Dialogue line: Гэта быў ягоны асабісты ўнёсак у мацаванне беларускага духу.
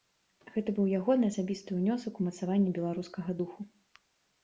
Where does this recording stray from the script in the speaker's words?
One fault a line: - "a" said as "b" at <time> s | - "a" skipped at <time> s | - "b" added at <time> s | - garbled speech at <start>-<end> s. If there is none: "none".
none